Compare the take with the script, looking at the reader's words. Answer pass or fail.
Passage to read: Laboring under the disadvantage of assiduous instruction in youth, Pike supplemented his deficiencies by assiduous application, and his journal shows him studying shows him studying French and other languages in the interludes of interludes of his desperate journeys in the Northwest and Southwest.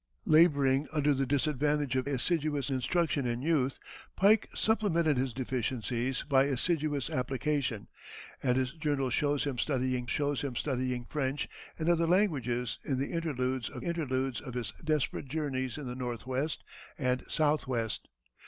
pass